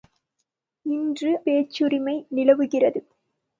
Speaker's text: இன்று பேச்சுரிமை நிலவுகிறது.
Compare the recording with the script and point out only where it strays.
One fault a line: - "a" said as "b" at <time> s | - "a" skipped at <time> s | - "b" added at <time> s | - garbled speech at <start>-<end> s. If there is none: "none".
none